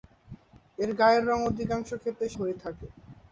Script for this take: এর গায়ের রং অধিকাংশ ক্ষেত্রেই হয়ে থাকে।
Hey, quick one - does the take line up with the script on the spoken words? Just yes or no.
yes